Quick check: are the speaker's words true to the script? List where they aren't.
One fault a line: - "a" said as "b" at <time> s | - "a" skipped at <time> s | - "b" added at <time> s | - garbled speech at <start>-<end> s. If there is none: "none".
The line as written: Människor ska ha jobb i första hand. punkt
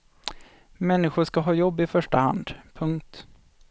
none